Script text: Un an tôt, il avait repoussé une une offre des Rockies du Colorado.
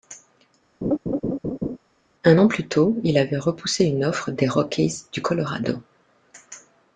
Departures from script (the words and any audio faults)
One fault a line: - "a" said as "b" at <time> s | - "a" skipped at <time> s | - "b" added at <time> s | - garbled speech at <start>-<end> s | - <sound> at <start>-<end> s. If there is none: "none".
- laugh at 0.8-1.8 s
- "plus" added at 2.5 s
- "une" skipped at 4.1 s